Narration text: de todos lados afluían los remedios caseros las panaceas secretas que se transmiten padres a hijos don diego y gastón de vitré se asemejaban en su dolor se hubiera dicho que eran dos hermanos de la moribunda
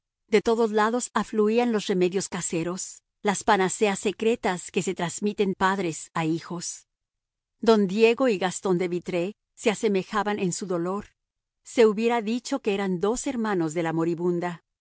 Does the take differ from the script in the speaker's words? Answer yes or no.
no